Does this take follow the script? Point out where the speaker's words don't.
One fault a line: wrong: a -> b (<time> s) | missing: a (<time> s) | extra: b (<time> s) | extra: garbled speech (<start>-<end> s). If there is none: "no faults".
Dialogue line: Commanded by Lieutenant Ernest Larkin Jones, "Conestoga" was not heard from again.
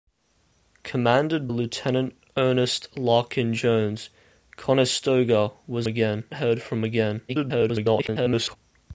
missing: by (1.5 s)
wrong: not -> again (5.9 s)
extra: garbled speech (7.3-8.6 s)